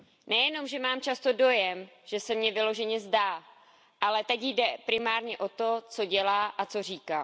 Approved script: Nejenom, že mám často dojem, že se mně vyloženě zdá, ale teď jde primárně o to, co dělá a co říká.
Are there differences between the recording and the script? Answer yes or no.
no